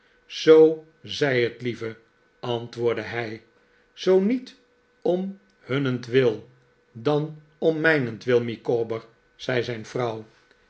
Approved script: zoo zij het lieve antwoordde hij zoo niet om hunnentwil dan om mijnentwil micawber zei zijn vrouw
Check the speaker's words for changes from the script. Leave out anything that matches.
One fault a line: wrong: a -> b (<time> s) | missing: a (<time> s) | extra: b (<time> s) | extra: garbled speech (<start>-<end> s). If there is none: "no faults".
no faults